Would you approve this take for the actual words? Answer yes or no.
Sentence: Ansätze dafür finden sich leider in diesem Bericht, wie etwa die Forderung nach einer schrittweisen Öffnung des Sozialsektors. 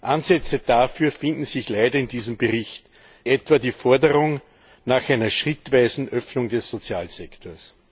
no